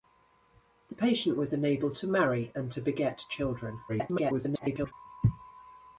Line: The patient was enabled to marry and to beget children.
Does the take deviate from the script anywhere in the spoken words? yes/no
yes